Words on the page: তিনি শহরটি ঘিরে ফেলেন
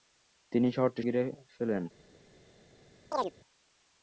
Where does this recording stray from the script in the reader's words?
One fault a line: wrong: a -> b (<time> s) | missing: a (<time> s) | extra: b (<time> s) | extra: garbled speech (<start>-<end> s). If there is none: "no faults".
no faults